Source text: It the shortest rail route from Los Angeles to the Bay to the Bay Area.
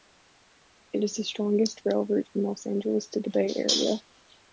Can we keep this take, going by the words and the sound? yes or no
no